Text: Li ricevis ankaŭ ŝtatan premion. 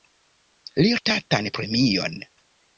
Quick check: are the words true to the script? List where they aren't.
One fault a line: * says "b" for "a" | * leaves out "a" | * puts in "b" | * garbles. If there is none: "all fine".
* leaves out "ricevis ankaŭ"